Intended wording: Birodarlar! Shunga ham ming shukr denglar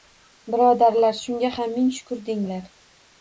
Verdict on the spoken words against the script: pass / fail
pass